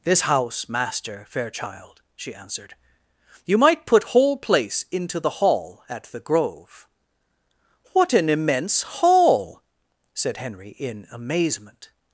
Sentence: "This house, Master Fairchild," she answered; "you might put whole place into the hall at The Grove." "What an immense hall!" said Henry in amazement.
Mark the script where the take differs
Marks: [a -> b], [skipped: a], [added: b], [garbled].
"This house, Master Fairchild," she answered; "you might put whole place into the hall at The Grove." "What an immense hall!" said Henry in amazement.